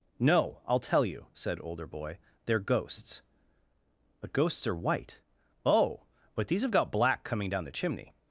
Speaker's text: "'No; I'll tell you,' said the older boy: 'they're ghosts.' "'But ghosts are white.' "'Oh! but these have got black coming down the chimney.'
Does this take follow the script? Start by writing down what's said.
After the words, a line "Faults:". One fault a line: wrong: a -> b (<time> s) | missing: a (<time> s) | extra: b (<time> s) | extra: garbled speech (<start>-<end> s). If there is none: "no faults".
"'No; I'll tell you,' said older boy: 'they're ghosts.' "'But ghosts are white.' "'Oh! but these have got black coming down the chimney.'
Faults:
missing: the (1.6 s)